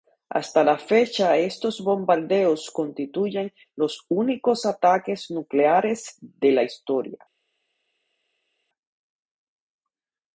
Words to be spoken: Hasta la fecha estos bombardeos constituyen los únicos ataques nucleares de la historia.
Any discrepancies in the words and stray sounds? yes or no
no